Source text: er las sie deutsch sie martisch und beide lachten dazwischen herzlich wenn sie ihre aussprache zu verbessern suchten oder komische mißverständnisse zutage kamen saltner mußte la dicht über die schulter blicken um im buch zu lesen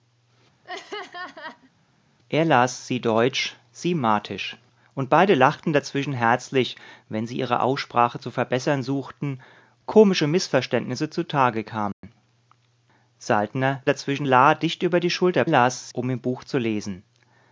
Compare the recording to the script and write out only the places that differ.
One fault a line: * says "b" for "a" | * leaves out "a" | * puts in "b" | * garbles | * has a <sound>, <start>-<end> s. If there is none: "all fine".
* has a laugh, 0.6-1.7 s
* leaves out "oder"
* has a dropout, 11.9-12.0 s
* says "dazwischen" for "mußte"
* says "las" for "blicken"